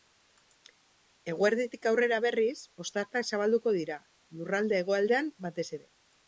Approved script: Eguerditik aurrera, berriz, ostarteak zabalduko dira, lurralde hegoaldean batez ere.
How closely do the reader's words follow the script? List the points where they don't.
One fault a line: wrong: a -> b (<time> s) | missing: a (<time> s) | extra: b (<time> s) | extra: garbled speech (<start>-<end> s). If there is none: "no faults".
no faults